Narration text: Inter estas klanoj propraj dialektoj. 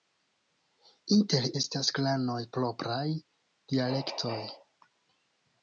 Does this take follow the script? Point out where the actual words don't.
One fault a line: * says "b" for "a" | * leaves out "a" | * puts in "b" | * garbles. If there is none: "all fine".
all fine